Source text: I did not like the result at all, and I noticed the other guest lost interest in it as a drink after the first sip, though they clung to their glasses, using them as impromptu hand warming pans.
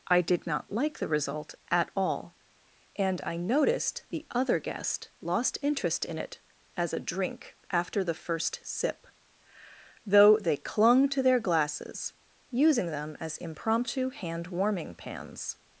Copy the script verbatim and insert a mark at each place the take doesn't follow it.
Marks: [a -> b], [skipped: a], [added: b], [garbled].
I did not like the result at all, and I noticed the other guest lost interest in it as a drink after the first sip, though they clung to their glasses, using them as impromptu hand warming pans.